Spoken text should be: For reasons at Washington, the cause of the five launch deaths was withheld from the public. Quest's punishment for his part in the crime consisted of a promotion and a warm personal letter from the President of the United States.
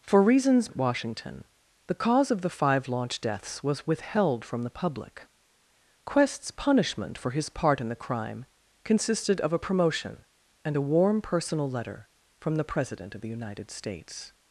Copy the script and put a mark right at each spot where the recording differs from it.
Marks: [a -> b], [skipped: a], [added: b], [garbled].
For reasons at Washington, the cause of the five launch deaths was withheld from the public. Quest's punishment for his part in the crime consisted of a promotion and a warm personal letter from the President of the United States.